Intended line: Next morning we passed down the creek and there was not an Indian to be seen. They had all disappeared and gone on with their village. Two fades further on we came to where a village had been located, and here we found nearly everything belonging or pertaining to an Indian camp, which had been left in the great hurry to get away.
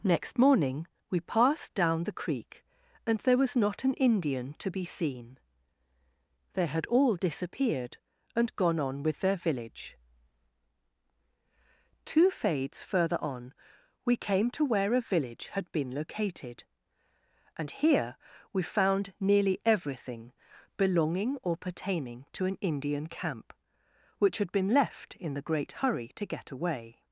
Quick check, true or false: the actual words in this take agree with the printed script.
true